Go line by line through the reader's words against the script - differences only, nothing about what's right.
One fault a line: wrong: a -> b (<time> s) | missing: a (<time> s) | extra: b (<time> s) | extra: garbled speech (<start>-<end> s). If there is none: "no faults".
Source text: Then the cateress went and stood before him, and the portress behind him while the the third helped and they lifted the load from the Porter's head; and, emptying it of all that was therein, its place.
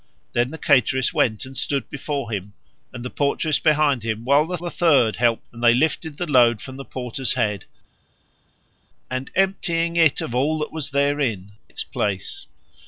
no faults